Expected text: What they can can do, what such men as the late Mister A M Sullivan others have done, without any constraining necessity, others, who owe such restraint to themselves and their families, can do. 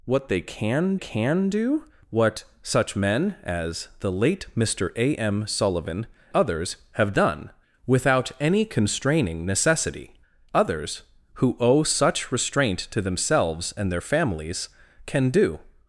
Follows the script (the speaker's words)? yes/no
yes